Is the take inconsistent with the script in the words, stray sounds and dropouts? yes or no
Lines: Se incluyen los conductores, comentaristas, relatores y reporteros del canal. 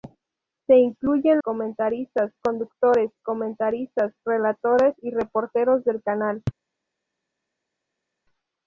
yes